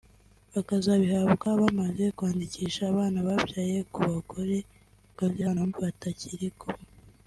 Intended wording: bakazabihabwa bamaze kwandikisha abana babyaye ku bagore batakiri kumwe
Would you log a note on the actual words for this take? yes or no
yes